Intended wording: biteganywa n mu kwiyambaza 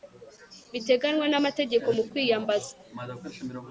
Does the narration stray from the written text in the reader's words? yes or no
yes